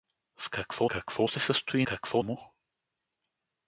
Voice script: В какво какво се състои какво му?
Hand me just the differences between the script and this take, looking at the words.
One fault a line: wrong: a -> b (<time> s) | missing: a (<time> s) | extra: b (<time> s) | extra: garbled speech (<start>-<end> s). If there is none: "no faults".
no faults